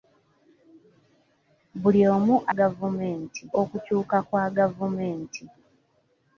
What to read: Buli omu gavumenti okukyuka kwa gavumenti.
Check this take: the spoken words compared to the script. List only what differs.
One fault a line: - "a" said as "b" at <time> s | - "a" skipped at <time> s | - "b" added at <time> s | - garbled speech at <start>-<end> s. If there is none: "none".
none